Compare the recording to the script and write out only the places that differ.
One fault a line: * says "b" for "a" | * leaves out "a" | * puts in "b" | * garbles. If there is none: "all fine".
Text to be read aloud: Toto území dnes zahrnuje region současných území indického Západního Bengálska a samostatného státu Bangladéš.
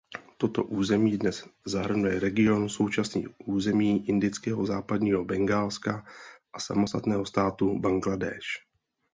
all fine